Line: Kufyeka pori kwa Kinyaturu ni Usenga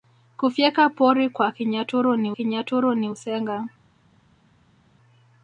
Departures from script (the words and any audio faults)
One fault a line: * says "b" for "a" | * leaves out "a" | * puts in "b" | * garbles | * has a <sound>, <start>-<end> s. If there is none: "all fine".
* puts in "Kinyaturu ni"